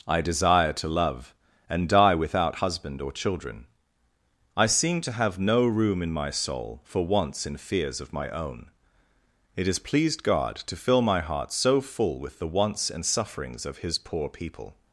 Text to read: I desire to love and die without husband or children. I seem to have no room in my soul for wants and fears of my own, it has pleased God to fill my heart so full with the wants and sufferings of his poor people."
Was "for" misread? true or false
false